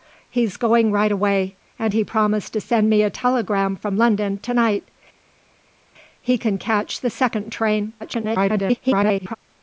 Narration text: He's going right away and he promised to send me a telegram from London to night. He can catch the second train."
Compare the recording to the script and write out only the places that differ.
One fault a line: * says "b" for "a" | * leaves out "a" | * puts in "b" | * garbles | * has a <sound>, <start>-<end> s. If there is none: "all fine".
* garbles